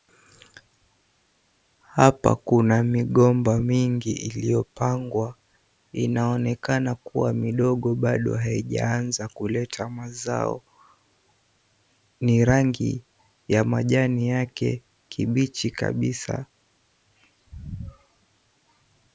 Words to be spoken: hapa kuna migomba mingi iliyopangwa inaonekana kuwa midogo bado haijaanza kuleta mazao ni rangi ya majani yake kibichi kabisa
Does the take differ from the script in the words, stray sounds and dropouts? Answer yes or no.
no